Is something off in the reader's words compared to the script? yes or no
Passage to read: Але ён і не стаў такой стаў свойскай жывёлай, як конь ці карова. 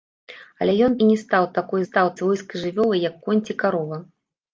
no